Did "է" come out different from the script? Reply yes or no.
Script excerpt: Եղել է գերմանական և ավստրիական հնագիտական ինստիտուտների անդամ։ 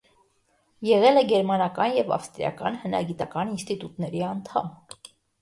no